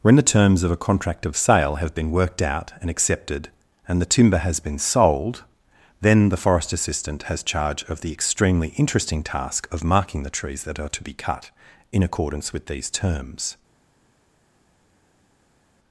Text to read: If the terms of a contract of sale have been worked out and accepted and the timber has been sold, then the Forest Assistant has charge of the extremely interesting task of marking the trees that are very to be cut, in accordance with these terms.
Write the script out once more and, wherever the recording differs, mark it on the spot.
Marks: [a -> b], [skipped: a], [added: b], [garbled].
[If -> When] the terms of a contract of sale have been worked out and accepted and the timber has been sold, then the Forest Assistant has charge of the extremely interesting task of marking the trees that are [skipped: very] to be cut, in accordance with these terms.